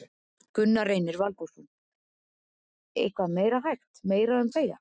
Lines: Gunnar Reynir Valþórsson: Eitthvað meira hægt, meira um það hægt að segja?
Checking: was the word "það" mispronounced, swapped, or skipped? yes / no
yes